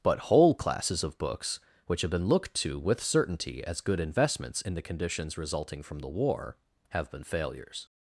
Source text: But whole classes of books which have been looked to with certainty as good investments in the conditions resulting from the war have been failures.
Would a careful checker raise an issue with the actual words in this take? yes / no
no